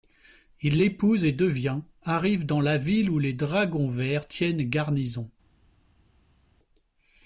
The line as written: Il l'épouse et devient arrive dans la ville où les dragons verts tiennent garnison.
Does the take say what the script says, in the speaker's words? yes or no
yes